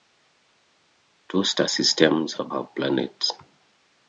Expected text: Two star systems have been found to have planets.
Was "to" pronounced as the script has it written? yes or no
no